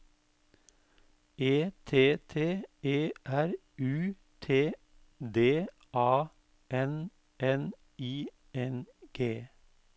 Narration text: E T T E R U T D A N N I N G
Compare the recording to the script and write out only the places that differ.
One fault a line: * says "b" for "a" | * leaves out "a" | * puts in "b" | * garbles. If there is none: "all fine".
all fine